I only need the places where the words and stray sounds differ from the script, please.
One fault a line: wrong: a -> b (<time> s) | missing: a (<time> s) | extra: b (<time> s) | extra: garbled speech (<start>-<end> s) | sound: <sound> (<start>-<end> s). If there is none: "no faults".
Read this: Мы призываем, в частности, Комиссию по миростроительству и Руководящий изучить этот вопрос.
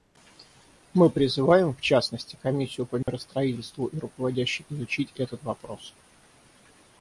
sound: dropout (3.0-3.1 s)